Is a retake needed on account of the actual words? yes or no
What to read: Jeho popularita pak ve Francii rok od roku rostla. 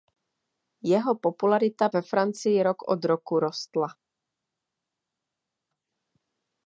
yes